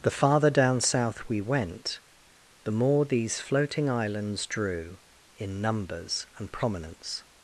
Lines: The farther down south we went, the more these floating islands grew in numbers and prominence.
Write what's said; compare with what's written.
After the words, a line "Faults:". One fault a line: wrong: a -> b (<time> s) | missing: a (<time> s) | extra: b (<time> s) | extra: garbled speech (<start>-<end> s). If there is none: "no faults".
The farther down south we went, the more these floating islands drew in numbers and prominence.
Faults:
wrong: grew -> drew (4.5 s)